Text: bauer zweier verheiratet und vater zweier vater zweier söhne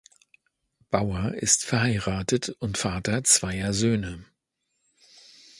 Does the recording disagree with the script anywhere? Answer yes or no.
yes